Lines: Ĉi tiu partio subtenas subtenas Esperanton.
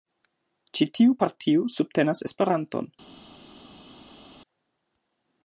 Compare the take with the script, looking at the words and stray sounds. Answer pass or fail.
fail